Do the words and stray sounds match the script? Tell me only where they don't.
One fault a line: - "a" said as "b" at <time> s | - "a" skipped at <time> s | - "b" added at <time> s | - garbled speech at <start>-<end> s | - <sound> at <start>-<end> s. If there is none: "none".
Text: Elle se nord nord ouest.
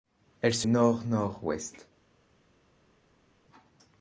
none